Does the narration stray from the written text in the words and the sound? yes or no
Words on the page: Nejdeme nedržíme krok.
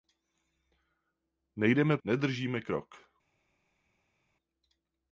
no